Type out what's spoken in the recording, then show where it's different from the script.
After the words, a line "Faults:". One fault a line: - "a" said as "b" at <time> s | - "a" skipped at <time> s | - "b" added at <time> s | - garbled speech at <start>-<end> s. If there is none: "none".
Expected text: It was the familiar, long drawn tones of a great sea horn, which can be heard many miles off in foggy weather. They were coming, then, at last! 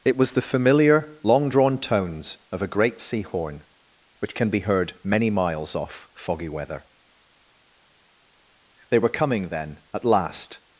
It was the familiar, long drawn tones of a great sea horn, which can be heard many miles off foggy weather. They were coming, then, at last!
Faults:
- "in" skipped at 6.1 s